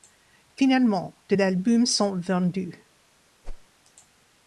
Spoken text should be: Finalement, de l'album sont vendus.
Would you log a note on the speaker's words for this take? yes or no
no